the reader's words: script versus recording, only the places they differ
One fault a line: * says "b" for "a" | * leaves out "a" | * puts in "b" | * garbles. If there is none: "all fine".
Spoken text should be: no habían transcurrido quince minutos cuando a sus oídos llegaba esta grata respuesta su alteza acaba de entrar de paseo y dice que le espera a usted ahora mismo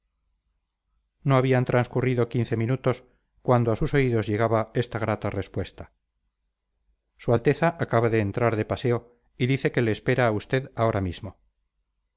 all fine